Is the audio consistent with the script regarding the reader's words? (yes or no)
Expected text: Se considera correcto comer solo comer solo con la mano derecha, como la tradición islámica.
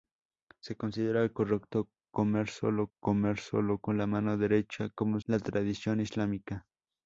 yes